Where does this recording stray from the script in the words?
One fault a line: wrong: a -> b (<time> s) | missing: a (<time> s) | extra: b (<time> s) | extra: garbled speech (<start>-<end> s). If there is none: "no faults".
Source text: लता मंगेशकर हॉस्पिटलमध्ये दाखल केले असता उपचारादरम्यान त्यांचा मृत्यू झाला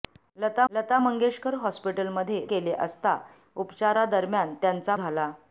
extra: लता (0.7 s)
missing: दाखल (2.4 s)
missing: मृत्यू (5.0 s)